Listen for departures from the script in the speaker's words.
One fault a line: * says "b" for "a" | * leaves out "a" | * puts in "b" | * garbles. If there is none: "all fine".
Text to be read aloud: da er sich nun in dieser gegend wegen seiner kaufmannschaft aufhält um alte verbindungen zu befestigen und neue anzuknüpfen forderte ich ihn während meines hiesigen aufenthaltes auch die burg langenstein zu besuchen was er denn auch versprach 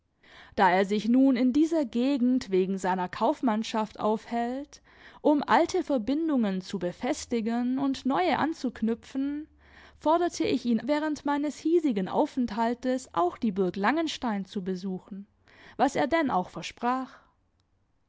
all fine